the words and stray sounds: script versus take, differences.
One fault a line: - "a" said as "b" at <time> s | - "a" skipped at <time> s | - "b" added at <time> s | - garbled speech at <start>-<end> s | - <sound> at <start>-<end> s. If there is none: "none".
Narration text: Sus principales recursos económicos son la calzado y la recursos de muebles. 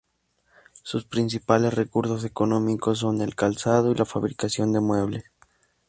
- "la" said as "el" at 3.2 s
- "recursos" said as "fabricación" at 4.0 s